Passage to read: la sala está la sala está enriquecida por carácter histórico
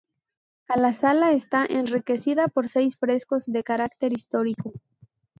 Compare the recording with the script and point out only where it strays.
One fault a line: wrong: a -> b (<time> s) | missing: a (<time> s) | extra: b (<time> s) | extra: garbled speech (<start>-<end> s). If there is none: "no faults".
wrong: la sala está enriquecida por -> enriquecida por seis frescos de (1.6 s)